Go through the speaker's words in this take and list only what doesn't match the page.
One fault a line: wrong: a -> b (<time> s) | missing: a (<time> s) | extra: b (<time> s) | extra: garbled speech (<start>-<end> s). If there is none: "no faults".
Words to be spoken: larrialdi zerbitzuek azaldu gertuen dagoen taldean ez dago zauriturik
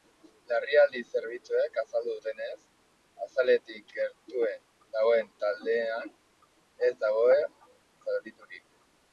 extra: dutenez azaletik (2.2 s)